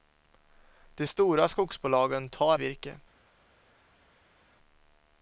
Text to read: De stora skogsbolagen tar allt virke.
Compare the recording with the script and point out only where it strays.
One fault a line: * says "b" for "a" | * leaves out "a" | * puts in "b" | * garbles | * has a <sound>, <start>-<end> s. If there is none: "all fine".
* leaves out "allt"